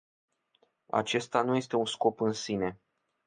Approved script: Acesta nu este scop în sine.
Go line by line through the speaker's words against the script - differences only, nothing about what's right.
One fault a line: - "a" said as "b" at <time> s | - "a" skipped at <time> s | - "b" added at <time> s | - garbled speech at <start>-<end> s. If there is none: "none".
- "un" added at 1.8 s